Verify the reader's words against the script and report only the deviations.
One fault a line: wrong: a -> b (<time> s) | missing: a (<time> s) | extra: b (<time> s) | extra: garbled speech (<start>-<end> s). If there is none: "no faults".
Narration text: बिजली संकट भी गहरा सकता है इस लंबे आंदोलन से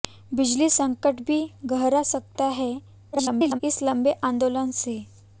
extra: garbled speech (3.1-3.6 s)